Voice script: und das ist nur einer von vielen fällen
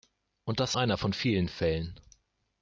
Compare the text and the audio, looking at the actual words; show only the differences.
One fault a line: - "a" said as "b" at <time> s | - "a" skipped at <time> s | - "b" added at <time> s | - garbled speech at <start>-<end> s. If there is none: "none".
- "ist nur" skipped at 0.8 s